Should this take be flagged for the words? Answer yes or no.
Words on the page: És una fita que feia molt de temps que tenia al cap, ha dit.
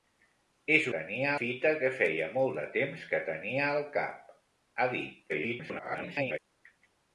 yes